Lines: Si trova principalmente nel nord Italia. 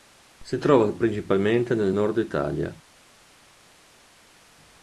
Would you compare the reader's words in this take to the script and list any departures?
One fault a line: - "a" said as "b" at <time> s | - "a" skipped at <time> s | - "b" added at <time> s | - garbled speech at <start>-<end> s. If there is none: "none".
none